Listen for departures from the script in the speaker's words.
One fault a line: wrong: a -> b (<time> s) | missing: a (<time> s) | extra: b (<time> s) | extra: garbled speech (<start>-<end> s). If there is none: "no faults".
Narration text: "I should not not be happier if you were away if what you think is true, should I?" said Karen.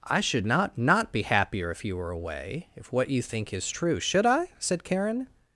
no faults